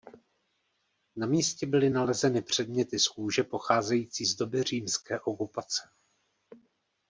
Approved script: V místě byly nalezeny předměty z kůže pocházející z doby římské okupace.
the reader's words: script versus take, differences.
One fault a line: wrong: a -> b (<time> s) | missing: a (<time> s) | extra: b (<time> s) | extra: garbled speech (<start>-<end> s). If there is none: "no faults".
wrong: V -> Na (1.1 s)